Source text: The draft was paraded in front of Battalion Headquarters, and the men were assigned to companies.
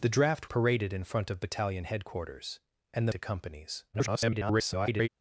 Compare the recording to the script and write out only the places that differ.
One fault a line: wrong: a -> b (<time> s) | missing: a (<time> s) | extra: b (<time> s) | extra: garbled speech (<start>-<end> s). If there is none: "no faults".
missing: was (0.5 s)
missing: men were assigned (3.1 s)
extra: garbled speech (3.9-5.1 s)